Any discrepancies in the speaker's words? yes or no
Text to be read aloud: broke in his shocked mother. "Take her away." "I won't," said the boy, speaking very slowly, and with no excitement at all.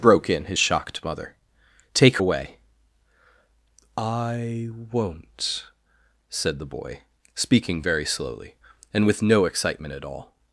yes